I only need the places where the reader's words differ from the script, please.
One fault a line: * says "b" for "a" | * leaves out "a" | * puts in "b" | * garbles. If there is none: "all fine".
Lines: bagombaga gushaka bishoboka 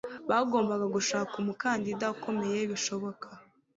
* puts in "umukandida ukomeye"